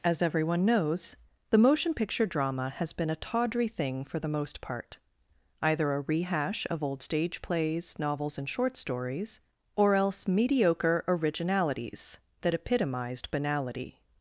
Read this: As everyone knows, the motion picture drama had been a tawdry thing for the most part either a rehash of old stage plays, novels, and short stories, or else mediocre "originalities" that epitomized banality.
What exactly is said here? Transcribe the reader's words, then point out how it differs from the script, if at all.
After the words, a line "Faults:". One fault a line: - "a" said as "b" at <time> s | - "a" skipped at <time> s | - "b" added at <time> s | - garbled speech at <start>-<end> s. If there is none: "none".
As everyone knows, the motion picture drama has been a tawdry thing for the most part either a rehash of old stage plays, novels, and short stories, or else mediocre "originalities" that epitomized banality.
Faults:
- "had" said as "has" at 2.7 s